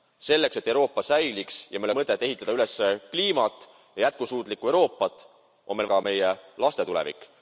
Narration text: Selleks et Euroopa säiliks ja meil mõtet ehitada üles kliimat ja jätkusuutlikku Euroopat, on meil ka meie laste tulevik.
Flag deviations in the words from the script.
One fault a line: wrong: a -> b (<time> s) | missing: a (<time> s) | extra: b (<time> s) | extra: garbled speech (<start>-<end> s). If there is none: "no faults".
no faults